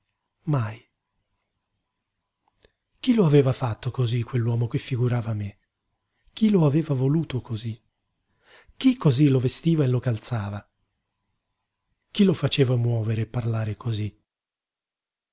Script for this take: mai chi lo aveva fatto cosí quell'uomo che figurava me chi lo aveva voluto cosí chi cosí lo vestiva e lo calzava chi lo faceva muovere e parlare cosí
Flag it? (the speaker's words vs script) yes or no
no